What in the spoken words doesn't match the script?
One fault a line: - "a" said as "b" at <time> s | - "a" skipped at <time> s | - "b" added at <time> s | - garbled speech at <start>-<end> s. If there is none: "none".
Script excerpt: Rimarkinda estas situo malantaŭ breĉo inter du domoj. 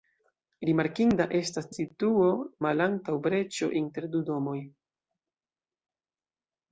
none